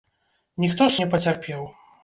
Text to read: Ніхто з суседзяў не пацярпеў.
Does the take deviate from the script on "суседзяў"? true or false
true